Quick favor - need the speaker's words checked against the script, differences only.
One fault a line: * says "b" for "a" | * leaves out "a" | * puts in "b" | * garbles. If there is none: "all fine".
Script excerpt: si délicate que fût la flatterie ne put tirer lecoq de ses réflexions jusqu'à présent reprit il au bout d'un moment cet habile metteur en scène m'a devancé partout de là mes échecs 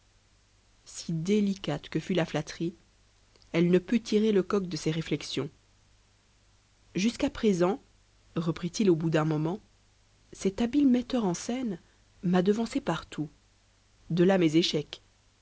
* puts in "elle"